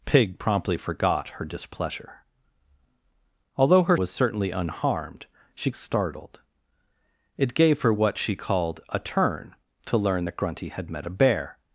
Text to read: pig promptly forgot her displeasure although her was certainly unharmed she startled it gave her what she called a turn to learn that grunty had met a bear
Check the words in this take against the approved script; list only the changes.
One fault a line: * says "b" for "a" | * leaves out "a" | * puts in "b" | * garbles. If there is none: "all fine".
all fine